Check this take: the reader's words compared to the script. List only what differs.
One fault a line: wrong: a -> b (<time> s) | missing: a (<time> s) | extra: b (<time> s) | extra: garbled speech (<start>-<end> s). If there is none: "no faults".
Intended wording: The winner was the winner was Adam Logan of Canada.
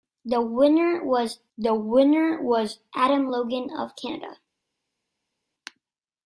no faults